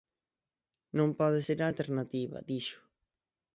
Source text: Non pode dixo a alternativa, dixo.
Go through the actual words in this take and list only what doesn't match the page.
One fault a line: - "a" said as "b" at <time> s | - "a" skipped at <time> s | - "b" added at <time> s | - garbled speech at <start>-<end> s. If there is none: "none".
- "dixo" said as "ser" at 1.5 s